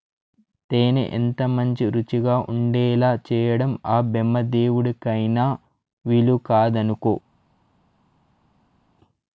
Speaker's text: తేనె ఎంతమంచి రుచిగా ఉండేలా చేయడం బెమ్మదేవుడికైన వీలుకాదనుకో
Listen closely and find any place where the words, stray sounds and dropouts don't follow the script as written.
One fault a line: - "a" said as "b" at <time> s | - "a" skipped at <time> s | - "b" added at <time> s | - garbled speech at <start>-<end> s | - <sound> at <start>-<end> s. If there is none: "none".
- "ఆ" added at 3.9 s